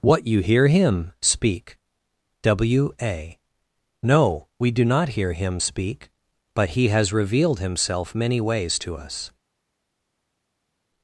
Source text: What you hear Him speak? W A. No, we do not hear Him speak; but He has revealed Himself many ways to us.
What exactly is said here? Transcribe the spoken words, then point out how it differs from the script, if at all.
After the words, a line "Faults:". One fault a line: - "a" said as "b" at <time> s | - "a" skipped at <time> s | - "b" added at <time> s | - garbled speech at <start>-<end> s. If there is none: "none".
What you hear Him speak? W A. No, we do not hear Him speak; but He has revealed Himself many ways to us.
Faults:
none